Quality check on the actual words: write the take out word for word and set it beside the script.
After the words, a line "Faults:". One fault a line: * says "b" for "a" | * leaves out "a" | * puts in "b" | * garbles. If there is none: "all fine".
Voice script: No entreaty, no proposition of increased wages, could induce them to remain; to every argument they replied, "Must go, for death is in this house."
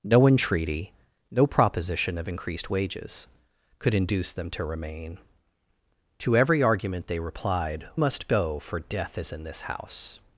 No entreaty, no proposition of increased wages, could induce them to remain; to every argument they replied, "Must go, for death is in this house."
Faults:
all fine